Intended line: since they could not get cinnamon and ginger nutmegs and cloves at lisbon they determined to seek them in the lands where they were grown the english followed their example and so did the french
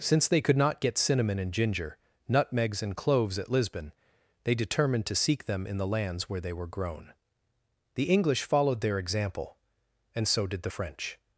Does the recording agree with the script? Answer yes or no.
yes